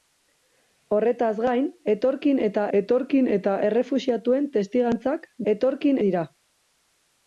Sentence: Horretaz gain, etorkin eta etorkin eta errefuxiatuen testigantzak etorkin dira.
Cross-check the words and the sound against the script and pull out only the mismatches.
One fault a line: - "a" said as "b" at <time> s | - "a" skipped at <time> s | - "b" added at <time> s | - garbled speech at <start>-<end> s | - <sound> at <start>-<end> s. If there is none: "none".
none